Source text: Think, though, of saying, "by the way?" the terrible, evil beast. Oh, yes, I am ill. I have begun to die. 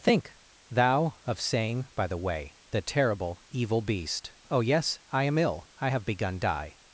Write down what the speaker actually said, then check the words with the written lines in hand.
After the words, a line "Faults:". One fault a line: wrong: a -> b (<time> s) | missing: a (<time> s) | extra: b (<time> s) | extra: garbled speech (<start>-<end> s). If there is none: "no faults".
Think, thou, of saying, "by the way?" the terrible, evil beast. Oh, yes, I am ill. I have begun die.
Faults:
wrong: though -> thou (0.7 s)
missing: to (6.4 s)